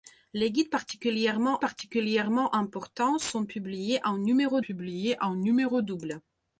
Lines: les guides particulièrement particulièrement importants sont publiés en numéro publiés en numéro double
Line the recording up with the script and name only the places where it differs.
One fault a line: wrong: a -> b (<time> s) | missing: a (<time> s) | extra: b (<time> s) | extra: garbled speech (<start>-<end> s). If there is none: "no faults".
no faults